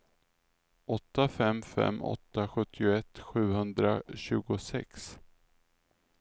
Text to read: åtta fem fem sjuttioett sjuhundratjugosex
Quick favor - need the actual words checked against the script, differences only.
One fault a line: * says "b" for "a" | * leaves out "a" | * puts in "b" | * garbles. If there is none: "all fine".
* puts in "åtta"